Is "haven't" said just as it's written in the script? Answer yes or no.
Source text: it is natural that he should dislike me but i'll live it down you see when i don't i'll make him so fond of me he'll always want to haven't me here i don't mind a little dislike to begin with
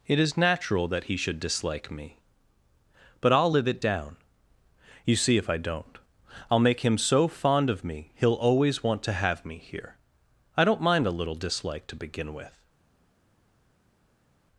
no